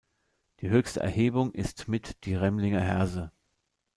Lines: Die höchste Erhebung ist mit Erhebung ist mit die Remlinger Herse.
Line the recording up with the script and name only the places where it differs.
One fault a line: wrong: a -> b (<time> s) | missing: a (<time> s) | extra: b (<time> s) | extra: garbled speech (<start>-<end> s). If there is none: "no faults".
missing: Erhebung ist mit (2.1 s)